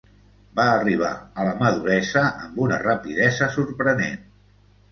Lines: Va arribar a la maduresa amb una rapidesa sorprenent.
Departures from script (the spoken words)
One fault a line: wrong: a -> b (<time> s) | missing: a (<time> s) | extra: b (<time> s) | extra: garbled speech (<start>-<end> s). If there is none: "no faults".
no faults